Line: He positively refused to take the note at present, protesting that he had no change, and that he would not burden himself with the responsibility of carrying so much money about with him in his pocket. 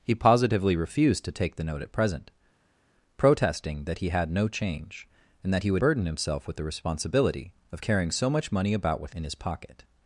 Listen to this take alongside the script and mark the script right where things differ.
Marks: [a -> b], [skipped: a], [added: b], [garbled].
He positively refused to take the note at present, protesting that he had no change, and that he would [skipped: not] burden himself with the responsibility of carrying so much money about with [skipped: him] in his pocket.